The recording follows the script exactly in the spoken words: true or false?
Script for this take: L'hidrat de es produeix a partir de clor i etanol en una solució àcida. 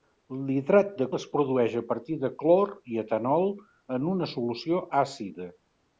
true